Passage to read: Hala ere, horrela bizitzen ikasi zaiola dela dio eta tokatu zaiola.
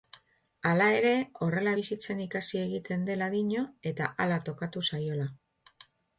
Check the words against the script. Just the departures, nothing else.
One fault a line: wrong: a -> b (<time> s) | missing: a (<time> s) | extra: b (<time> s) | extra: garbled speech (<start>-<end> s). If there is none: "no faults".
wrong: zaiola -> egiten (2.7 s)
extra: hala (4.3 s)